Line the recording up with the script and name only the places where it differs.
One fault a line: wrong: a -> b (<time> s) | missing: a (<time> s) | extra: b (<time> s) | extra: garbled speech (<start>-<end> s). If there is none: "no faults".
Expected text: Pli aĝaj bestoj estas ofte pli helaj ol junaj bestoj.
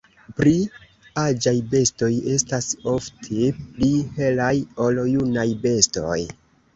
no faults